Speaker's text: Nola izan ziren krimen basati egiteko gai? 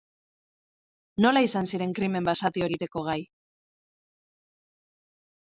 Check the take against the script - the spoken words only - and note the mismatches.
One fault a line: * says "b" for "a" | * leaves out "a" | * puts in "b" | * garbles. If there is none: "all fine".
all fine